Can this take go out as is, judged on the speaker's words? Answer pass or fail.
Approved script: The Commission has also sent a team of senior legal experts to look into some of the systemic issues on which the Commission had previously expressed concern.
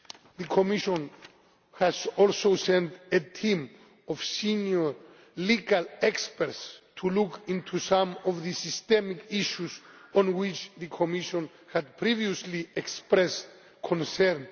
pass